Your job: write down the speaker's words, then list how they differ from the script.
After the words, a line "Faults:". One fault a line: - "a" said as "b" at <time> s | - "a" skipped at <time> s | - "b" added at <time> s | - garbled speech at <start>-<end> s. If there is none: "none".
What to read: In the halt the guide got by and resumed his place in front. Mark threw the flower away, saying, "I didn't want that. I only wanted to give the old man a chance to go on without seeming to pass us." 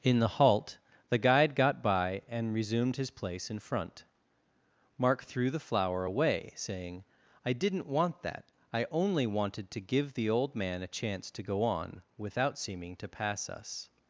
In the halt the guide got by and resumed his place in front. Mark threw the flower away, saying, "I didn't want that. I only wanted to give the old man a chance to go on without seeming to pass us."
Faults:
none